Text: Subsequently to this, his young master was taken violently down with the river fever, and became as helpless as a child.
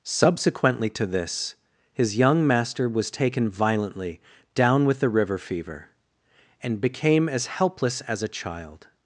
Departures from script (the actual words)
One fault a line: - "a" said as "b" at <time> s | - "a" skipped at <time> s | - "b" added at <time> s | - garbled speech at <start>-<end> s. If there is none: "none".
none